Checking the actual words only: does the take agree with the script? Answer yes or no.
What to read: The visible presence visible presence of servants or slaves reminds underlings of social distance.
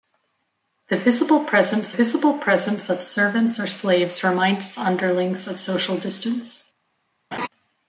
yes